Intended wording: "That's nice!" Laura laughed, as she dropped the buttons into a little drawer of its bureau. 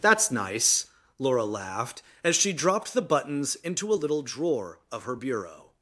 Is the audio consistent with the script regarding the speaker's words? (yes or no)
no